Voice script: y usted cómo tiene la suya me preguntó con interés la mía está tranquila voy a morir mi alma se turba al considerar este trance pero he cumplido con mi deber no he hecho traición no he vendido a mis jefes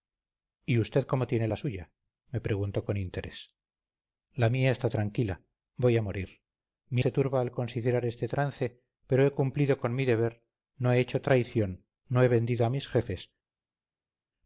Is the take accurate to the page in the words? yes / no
no